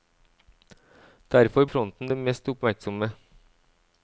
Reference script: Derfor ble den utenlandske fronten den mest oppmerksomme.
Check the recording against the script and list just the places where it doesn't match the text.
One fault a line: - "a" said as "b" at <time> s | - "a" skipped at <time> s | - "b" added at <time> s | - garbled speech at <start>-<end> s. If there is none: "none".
- "ble den utenlandske" skipped at 1.7 s